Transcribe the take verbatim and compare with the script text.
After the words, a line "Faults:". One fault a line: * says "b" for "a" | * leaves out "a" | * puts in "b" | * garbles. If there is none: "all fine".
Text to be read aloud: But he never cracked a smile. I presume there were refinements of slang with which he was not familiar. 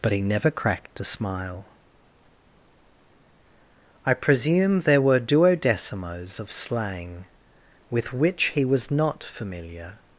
But he never cracked a smile. I presume there were duodecimos of slang with which he was not familiar.
Faults:
* says "duodecimos" for "refinements"